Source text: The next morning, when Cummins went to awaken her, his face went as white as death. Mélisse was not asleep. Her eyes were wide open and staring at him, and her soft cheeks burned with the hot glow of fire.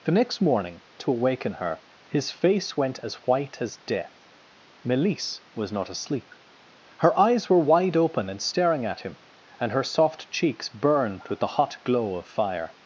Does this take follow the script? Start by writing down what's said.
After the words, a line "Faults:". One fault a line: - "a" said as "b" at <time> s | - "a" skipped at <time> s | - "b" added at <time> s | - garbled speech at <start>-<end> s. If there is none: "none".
The next morning, to awaken her, his face went as white as death. Mélisse was not asleep. Her eyes were wide open and staring at him, and her soft cheeks burned with the hot glow of fire.
Faults:
- "when Cummins went" skipped at 0.8 s